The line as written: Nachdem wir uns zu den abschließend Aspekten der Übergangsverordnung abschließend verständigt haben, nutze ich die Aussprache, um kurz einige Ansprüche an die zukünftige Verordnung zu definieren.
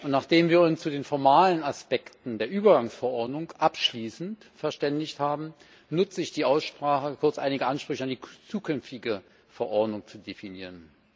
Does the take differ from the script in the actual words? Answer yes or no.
yes